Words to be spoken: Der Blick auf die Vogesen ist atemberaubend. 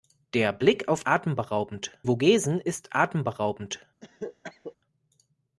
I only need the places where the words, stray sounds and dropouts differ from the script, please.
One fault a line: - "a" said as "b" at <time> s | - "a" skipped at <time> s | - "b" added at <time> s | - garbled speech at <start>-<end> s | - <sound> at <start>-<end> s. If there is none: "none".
- "die" said as "atemberaubend" at 1.1 s
- cough at 4.0-4.8 s